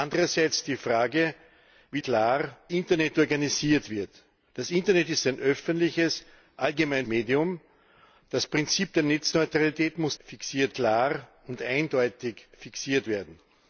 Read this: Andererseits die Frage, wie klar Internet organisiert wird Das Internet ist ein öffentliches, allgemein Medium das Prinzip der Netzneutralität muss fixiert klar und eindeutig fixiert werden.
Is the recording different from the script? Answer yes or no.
no